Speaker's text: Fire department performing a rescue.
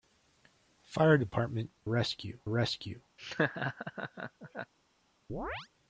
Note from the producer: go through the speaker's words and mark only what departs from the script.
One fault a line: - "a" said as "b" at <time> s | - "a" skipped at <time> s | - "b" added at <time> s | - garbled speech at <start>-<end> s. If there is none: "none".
- "performing" said as "rescue" at 1.9 s